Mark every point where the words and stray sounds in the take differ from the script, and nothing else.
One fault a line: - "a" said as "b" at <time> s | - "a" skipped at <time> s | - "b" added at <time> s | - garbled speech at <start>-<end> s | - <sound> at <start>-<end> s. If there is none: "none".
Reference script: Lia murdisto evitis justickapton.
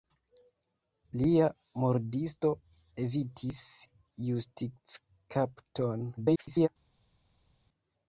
- garbled speech at 6.2-6.7 s